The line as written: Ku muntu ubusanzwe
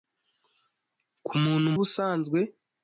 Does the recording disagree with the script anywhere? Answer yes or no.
no